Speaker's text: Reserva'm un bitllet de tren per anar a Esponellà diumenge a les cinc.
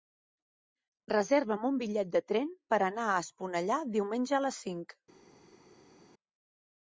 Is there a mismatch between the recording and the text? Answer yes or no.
no